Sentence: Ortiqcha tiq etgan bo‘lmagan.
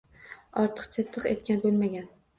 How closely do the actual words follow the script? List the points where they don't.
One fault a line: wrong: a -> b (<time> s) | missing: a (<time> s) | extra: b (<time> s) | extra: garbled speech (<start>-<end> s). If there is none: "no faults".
no faults